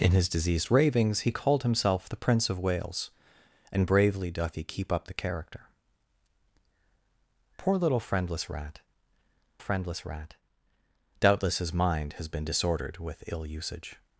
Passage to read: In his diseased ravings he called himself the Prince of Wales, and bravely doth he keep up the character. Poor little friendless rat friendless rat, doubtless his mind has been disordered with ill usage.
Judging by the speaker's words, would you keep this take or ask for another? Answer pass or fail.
pass